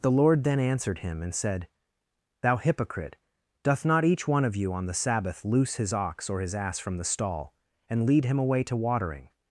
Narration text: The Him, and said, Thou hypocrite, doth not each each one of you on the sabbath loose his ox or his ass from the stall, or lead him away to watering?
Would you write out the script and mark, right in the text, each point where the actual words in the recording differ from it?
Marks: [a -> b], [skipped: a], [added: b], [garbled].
The [added: Lord then answered] Him, and said, Thou hypocrite, doth not each [skipped: each] one of you on the sabbath loose his ox or his ass from the stall, [or -> and] lead him away to watering?